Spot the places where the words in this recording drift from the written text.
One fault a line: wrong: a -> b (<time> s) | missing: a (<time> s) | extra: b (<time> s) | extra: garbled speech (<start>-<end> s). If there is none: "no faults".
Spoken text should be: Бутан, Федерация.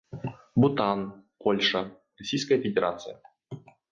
extra: Польша Российская (1.4 s)